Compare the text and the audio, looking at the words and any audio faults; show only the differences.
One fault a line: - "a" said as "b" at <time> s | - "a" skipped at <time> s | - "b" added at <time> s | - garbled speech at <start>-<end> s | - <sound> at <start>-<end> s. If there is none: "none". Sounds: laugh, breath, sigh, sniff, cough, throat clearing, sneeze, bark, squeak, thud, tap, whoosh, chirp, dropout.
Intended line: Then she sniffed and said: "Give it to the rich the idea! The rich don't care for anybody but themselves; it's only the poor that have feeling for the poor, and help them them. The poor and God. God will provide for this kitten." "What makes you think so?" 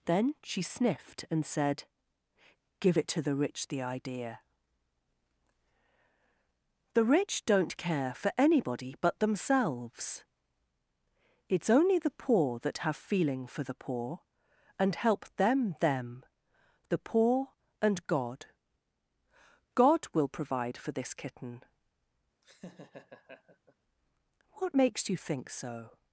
- laugh at 22.4-23.7 s